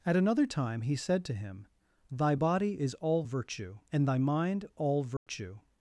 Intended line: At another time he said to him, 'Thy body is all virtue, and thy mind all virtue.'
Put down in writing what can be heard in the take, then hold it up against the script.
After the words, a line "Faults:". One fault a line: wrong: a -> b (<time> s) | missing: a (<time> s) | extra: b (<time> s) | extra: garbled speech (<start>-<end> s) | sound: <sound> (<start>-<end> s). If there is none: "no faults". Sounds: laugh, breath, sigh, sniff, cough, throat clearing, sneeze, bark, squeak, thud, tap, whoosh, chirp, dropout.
At another time he said to him, 'Thy body is all virtue, and thy mind all virtue.'
Faults:
sound: dropout (5.2-5.3 s)